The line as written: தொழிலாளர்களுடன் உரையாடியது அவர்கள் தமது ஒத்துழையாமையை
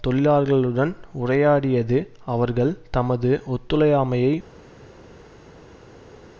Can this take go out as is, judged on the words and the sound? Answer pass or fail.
pass